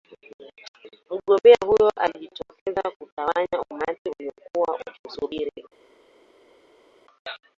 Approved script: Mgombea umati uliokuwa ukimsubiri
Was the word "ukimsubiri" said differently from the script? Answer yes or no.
no